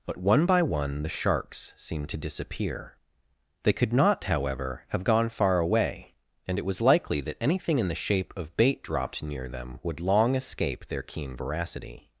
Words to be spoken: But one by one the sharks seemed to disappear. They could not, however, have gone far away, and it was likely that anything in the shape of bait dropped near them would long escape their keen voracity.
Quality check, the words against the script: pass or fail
pass